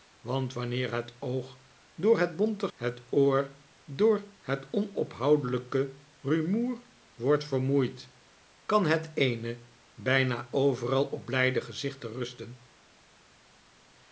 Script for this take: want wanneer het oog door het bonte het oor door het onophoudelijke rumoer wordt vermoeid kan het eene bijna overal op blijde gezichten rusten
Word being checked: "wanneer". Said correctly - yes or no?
yes